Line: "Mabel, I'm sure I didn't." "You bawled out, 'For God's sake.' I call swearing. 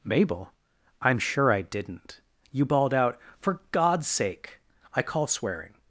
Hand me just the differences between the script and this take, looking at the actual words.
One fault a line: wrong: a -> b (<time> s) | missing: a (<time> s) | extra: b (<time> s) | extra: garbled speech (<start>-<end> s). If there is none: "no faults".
no faults